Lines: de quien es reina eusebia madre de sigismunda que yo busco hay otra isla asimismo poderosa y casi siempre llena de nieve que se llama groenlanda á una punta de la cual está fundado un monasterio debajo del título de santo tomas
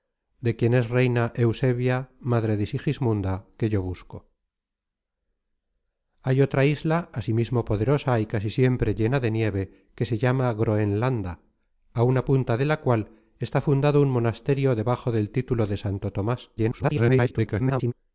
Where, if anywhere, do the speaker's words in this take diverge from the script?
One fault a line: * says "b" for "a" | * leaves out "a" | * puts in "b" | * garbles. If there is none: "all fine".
* garbles